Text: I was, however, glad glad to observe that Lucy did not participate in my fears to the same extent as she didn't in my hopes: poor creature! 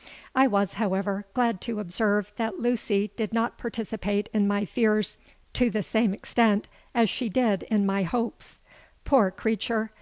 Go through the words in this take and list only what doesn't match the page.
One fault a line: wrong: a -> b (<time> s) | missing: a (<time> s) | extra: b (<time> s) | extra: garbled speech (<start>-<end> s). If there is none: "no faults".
missing: glad (1.6 s)
wrong: didn't -> did (7.3 s)